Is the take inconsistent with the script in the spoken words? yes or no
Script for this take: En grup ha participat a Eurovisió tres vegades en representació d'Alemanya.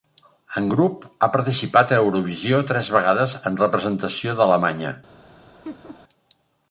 no